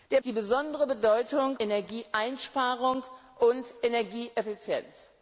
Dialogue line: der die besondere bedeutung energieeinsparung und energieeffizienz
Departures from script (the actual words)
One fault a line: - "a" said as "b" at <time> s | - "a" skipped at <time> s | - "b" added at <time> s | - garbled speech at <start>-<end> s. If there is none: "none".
none